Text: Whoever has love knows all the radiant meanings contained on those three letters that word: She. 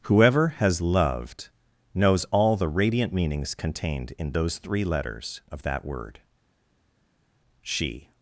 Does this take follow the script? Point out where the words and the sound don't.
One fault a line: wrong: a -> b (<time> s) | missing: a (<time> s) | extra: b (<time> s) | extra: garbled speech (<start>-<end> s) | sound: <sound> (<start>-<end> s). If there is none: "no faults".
wrong: love -> loved (0.8 s)
wrong: on -> in (4.2 s)
extra: of (5.5 s)